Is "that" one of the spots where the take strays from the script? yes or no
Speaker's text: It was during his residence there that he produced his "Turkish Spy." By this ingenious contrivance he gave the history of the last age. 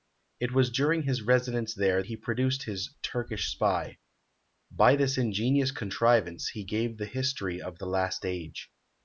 yes